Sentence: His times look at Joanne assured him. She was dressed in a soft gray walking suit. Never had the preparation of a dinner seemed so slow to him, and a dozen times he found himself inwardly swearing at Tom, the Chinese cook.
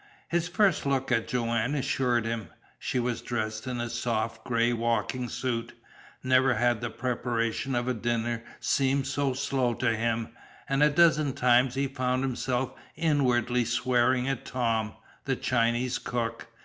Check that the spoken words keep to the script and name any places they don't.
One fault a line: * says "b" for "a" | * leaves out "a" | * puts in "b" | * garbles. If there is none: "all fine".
* says "first" for "times"